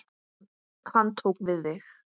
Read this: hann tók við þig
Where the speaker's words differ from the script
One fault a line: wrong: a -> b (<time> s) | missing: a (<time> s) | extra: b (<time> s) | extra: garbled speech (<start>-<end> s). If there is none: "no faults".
no faults